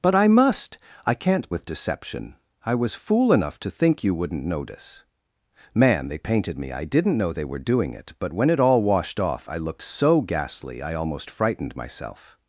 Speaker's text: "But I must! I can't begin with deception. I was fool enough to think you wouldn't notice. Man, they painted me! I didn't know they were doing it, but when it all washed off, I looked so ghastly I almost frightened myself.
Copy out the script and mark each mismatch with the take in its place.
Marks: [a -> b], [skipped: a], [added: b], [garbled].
"But I must! I can't [skipped: begin] with deception. I was fool enough to think you wouldn't notice. Man, they painted me! I didn't know they were doing it, but when it all washed off, I looked so ghastly I almost frightened myself.